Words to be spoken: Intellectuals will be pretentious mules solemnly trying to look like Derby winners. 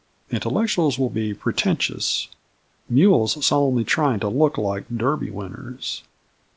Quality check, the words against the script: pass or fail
pass